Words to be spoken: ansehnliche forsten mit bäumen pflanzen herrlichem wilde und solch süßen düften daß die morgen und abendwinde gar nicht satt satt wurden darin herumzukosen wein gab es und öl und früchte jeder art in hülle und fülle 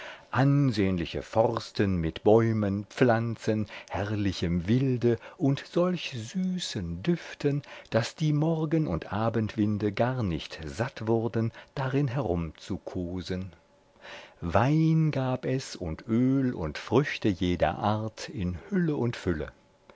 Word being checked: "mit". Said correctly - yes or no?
yes